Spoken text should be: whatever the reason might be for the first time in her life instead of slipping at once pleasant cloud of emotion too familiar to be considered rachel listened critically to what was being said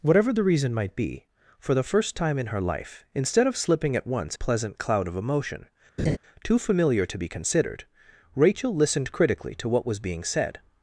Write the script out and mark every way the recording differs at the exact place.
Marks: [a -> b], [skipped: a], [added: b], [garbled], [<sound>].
whatever the reason might be for the first time in her life instead of slipping at once pleasant cloud of emotion [laugh] too familiar to be considered rachel listened critically to what was being said